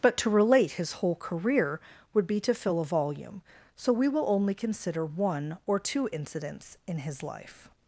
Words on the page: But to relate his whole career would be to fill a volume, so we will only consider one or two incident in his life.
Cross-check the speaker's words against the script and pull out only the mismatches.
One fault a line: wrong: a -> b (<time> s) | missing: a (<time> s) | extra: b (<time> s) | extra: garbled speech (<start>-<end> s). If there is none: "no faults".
wrong: incident -> incidents (6.1 s)